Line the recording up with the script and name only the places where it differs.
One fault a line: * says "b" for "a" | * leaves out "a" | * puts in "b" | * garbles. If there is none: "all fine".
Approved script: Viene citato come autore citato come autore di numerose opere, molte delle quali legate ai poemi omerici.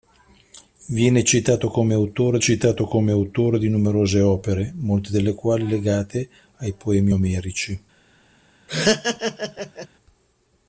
all fine